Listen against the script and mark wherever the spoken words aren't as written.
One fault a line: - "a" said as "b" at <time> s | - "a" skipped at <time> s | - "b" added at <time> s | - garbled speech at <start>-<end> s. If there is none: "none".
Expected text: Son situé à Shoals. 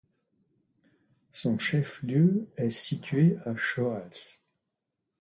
- "chef lieu est" added at 1.6 s